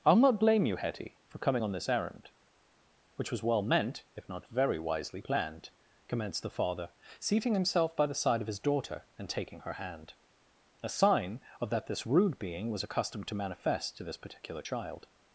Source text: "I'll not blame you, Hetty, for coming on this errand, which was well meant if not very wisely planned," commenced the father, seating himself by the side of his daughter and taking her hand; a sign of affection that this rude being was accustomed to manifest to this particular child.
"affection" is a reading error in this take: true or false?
true